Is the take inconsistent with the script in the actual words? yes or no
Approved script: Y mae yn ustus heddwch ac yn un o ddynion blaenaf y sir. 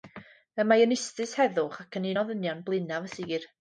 no